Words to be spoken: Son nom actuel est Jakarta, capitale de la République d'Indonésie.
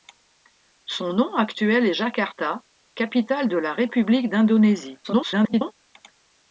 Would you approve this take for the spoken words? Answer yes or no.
no